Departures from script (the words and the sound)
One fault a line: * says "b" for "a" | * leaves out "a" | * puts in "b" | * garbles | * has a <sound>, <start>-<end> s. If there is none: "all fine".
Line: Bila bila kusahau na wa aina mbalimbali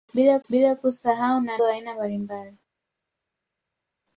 all fine